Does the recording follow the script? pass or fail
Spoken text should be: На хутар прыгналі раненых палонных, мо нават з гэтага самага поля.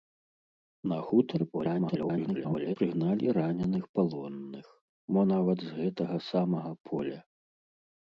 fail